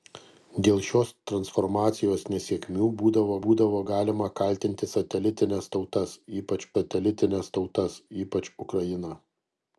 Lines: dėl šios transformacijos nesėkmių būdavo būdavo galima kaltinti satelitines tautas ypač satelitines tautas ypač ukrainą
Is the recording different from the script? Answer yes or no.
no